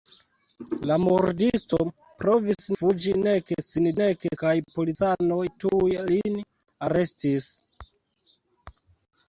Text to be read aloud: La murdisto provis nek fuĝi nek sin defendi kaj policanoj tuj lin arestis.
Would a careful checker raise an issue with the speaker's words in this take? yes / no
yes